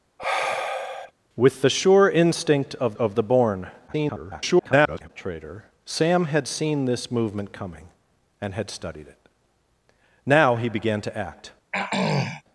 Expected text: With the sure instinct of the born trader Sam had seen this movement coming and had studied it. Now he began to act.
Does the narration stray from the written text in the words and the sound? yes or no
yes